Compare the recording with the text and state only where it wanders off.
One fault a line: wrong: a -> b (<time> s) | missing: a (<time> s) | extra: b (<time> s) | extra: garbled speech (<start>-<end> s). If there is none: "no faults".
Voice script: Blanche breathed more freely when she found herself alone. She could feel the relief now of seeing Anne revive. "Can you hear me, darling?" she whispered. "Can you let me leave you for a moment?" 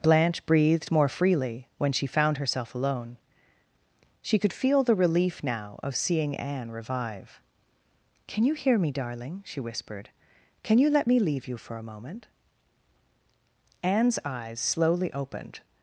extra: Anne's eyes slowly opened (13.8 s)